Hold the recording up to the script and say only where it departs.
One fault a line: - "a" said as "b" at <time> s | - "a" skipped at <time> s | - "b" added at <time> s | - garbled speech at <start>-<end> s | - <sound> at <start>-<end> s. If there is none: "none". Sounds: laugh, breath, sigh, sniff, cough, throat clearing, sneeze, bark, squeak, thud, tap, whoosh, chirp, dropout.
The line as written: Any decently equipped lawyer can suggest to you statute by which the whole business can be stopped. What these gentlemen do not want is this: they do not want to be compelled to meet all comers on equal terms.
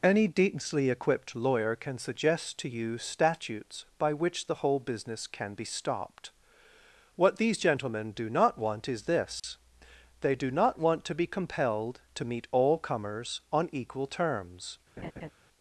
- "statute" said as "statutes" at 3.0 s
- dropout at 9.4-9.4 s
- laugh at 15.0-15.3 s